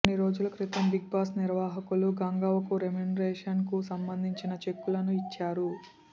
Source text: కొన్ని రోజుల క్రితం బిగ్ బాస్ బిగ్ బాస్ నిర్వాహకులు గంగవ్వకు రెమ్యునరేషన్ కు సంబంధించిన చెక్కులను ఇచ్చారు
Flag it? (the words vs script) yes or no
yes